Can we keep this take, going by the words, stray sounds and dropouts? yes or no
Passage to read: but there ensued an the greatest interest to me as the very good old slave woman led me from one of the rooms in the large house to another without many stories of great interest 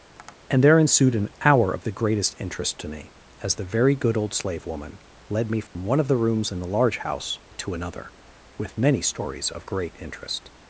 no